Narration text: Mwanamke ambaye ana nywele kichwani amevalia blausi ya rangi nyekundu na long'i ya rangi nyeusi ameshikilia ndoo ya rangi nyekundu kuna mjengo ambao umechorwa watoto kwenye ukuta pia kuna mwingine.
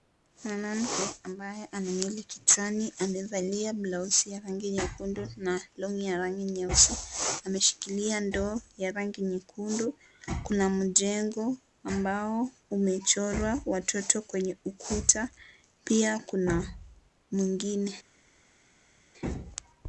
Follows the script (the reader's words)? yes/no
yes